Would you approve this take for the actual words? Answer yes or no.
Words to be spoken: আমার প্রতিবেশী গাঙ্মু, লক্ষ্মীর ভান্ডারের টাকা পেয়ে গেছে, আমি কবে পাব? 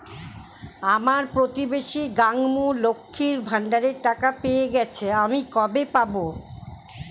yes